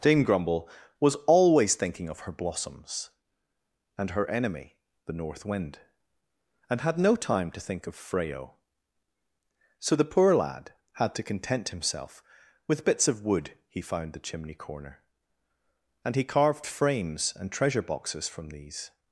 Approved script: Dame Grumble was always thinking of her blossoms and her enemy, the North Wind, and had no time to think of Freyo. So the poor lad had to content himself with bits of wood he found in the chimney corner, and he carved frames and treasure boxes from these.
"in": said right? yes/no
no